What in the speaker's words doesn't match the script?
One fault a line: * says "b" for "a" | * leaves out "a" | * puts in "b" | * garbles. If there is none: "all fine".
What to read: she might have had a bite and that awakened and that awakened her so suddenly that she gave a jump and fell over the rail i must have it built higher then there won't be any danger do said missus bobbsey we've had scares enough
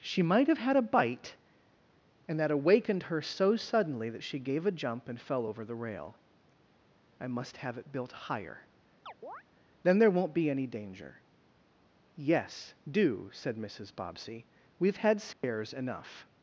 * leaves out "and that awakened"
* puts in "yes"